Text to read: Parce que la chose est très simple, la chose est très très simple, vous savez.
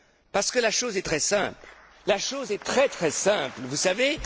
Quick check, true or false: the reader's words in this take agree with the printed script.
true